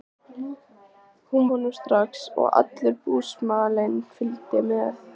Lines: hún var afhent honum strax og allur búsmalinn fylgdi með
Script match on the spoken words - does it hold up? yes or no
no